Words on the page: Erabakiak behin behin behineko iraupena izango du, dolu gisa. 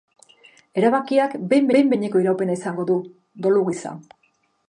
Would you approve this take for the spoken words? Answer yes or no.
yes